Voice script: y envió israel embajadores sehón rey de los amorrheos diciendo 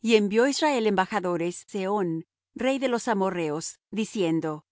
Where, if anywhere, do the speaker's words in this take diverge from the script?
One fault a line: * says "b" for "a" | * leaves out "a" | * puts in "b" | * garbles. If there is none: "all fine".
all fine